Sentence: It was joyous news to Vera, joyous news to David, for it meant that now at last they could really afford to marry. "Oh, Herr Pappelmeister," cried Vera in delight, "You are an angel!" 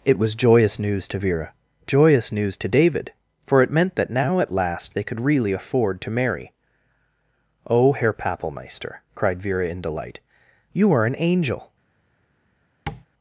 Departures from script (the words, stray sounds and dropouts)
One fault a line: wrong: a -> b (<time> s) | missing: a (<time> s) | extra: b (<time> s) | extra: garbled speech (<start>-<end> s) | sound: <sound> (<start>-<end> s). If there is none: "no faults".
sound: tap (12.9-13.1 s)